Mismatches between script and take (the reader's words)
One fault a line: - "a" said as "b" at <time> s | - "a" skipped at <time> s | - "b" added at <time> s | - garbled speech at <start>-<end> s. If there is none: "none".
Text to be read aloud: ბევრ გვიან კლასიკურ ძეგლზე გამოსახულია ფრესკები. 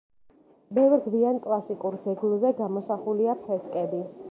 none